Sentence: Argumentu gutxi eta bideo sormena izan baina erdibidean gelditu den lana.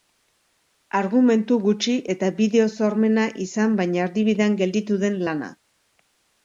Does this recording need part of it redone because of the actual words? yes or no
no